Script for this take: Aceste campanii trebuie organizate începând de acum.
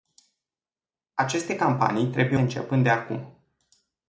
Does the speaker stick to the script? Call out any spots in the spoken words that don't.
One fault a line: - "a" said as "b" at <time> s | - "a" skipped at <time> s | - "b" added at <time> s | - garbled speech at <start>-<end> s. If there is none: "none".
- "organizate" skipped at 2.4 s